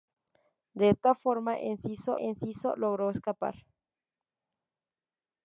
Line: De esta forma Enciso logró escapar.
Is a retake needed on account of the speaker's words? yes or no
yes